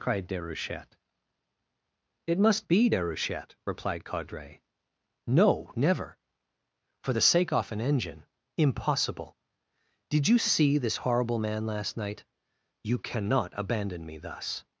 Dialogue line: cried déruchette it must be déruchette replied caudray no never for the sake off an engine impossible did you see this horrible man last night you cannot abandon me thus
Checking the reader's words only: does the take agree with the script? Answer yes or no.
yes